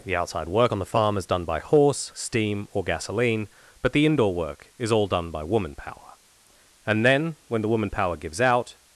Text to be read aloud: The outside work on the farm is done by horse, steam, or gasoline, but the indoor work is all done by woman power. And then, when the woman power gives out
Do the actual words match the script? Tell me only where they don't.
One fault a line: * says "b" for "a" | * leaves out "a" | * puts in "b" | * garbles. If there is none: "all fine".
all fine